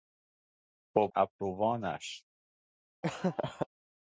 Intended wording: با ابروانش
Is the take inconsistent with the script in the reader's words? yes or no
no